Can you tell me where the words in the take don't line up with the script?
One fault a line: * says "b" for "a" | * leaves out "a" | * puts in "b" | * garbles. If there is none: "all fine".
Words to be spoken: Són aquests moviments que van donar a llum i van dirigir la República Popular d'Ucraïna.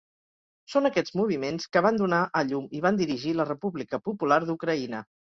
all fine